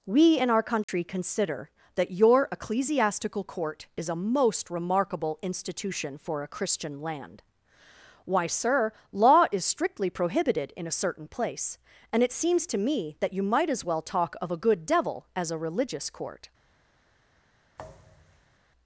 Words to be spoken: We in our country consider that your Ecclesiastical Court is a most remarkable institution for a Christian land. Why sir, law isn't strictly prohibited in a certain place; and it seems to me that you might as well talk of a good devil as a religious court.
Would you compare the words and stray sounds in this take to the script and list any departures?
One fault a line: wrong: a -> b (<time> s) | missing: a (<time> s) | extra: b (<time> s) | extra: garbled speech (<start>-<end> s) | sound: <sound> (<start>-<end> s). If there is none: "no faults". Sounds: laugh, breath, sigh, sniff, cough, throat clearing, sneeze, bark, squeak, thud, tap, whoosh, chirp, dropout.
sound: dropout (0.8-0.9 s)
wrong: isn't -> is (9.5 s)
sound: thud (17.8-18.6 s)